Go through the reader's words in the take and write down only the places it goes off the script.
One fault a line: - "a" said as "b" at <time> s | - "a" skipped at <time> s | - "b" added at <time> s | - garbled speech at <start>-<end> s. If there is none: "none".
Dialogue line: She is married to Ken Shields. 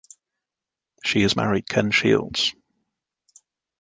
- "to" skipped at 1.7 s